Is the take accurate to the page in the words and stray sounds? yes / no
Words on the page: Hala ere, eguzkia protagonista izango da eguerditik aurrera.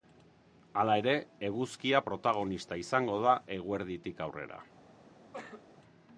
no